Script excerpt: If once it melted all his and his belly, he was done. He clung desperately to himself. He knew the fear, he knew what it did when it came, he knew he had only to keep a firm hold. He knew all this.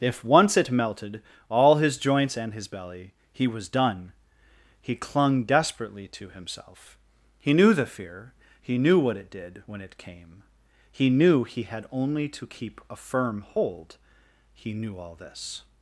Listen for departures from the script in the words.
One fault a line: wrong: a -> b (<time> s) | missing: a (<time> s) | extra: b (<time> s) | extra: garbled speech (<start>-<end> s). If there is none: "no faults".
extra: joints (2.0 s)